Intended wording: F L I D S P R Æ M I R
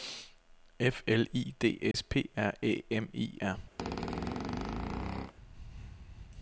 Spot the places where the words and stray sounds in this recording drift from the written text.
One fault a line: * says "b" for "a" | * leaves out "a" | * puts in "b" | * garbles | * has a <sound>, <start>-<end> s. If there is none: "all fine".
* has a dropout, 1.9-1.9 s
* has a squeak, 3.8-5.3 s